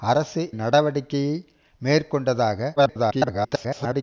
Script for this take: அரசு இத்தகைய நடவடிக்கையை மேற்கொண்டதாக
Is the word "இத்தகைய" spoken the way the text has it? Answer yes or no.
no